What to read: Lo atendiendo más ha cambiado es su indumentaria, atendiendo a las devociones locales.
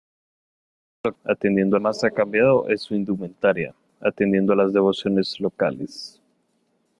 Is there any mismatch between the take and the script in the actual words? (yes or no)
no